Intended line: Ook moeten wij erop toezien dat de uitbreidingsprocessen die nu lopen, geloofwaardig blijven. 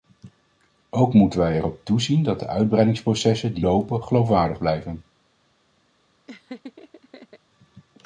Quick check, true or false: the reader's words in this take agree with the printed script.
false